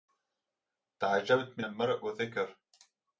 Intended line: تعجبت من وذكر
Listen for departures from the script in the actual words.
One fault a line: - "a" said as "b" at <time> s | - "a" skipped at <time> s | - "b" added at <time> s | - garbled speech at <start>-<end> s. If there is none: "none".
- "المرء" added at 1.6 s